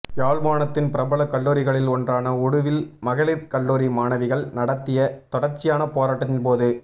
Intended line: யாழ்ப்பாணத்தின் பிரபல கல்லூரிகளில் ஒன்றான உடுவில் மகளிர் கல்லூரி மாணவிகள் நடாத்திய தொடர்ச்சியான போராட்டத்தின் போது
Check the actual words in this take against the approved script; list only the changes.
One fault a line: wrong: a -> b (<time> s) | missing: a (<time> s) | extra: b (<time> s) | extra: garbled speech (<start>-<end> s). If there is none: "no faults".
no faults